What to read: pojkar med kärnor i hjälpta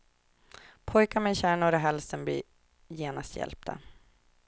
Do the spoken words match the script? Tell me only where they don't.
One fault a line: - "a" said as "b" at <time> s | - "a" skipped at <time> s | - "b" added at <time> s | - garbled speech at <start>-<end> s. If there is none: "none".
- "halsen blir genast" added at 1.8 s